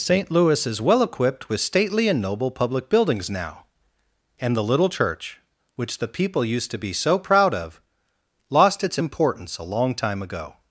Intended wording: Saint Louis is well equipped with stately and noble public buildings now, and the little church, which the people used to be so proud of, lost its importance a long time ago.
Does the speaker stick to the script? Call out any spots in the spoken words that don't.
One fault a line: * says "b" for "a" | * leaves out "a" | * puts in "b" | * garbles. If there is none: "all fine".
all fine